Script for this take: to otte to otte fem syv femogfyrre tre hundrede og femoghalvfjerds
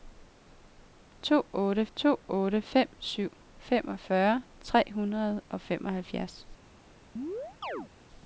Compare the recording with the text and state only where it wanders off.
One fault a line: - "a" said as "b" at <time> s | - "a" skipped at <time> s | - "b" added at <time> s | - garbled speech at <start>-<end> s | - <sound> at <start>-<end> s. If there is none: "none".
- chirp at 7.2-7.9 s